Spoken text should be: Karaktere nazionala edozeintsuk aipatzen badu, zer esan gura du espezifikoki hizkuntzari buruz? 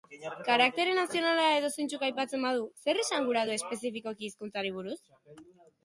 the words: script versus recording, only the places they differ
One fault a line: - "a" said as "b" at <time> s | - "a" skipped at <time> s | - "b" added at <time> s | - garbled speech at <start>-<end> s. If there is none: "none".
none